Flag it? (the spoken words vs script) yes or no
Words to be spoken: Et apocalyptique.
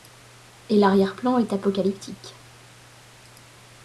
yes